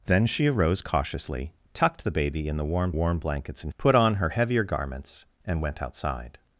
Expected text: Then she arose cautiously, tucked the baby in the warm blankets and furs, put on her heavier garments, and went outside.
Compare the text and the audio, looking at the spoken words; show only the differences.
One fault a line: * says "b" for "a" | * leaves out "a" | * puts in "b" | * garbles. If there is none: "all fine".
* puts in "warm"
* leaves out "furs"